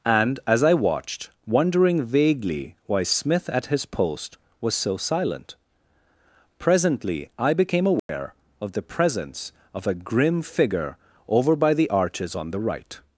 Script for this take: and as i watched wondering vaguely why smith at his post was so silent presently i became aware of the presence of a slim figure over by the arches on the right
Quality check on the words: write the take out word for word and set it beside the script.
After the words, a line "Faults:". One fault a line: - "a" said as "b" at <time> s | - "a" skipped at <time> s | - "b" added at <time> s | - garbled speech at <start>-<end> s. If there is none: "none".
and as i watched wondering vaguely why smith at his post was so silent presently i became aware of the presence of a grim figure over by the arches on the right
Faults:
- "slim" said as "grim" at 9.9 s